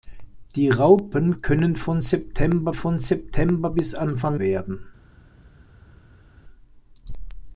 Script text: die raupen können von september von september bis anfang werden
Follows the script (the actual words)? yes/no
yes